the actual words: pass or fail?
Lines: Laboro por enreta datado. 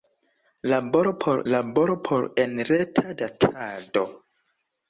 fail